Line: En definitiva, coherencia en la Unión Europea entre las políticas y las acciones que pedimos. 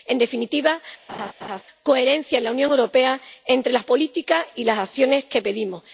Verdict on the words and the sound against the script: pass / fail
fail